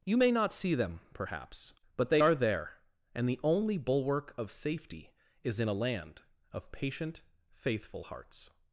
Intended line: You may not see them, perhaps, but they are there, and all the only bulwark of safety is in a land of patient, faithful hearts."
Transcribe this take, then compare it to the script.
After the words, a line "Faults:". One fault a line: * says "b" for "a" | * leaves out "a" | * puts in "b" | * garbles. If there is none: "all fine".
You may not see them, perhaps, but they are there, and the only bulwark of safety is in a land of patient, faithful hearts."
Faults:
* leaves out "all"